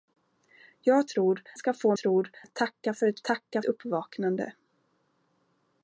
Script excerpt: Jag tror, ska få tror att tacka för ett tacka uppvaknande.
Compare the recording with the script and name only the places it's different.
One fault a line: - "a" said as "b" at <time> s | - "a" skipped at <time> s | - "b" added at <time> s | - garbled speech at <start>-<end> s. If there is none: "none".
none